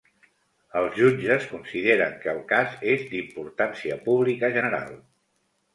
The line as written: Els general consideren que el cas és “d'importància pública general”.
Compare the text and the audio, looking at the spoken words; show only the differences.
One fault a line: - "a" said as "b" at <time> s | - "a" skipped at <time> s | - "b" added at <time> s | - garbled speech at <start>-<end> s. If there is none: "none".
- "general" said as "jutges" at 1.0 s